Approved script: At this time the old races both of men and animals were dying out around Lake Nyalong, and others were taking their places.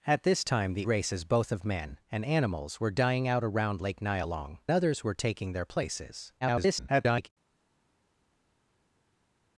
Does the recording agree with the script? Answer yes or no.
no